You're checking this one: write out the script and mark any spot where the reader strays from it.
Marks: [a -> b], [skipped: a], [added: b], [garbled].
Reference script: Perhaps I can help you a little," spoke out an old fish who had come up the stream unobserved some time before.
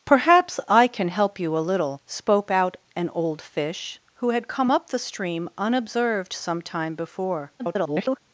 Perhaps I can help you a little," spoke out an old fish who had come up the stream unobserved some time before. [garbled]